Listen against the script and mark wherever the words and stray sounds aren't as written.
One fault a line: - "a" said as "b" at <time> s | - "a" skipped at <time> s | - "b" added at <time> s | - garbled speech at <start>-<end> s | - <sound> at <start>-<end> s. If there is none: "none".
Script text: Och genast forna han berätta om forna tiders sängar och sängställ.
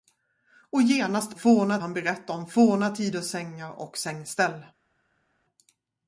none